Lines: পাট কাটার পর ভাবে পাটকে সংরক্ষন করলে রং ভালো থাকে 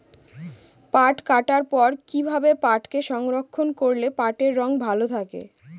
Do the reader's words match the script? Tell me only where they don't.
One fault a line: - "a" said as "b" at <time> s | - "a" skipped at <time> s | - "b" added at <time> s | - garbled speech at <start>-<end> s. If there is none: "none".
- "কি" added at 2.1 s
- "পাটের" added at 4.2 s